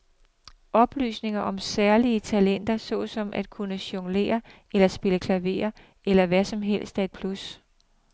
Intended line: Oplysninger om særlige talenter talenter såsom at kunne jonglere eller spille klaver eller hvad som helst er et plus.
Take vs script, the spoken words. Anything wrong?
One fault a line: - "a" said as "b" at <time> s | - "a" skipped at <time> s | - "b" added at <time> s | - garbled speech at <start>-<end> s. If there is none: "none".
- "talenter" skipped at 2.8 s